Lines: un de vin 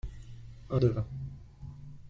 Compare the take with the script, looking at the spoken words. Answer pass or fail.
pass